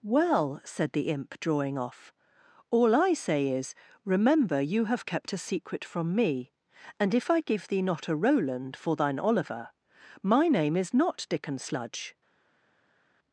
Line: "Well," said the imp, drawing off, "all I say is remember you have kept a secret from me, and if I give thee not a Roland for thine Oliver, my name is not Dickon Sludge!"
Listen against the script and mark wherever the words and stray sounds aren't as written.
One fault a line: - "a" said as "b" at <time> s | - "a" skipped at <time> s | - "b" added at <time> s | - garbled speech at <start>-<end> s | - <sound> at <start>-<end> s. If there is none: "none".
none